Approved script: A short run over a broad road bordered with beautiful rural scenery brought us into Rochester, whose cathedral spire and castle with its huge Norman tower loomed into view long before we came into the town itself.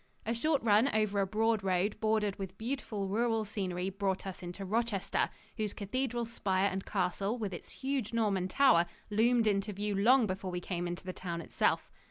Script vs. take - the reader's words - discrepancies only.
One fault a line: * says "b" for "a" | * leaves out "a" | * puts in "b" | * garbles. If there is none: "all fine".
all fine